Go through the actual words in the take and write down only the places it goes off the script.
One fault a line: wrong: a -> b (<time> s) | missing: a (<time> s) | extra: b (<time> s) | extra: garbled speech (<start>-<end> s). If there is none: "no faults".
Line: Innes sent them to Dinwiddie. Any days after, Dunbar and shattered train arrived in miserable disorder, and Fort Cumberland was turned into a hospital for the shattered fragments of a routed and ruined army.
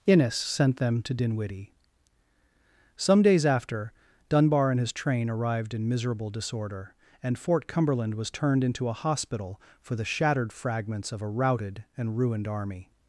wrong: Any -> Some (3.0 s)
wrong: shattered -> his (4.8 s)